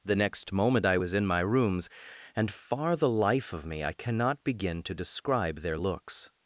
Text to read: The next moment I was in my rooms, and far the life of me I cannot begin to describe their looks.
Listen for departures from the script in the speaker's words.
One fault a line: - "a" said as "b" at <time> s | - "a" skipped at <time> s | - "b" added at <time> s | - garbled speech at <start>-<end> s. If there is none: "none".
none